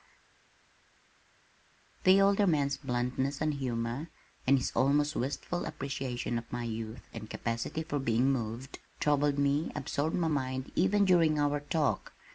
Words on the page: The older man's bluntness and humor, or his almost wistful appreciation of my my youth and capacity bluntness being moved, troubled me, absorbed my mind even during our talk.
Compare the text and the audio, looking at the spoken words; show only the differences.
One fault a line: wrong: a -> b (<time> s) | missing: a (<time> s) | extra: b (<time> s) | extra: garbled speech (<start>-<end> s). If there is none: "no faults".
wrong: or -> and (4.5 s)
missing: my (6.6 s)
wrong: bluntness -> for (7.8 s)